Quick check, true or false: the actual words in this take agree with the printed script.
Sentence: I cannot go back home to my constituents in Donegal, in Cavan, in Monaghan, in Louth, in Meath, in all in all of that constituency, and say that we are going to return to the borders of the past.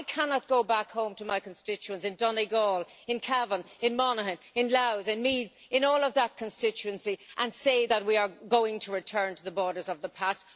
false